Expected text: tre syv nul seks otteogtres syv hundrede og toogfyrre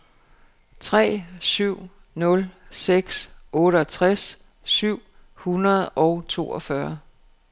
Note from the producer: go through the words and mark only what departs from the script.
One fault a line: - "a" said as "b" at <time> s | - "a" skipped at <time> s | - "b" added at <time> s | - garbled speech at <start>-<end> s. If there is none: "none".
none